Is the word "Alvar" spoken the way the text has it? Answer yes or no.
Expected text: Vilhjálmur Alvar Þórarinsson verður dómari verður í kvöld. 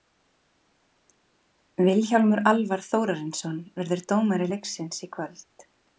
yes